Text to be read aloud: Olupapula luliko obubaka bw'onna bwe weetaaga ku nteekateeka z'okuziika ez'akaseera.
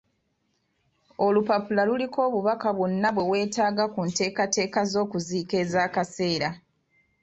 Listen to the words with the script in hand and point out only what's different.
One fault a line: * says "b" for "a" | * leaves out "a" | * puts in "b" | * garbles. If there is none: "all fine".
all fine